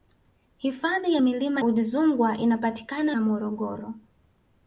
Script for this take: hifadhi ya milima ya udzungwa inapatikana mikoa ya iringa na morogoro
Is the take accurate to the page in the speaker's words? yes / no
no